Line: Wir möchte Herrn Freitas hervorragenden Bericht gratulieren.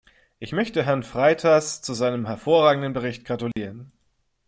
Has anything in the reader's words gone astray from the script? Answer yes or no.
yes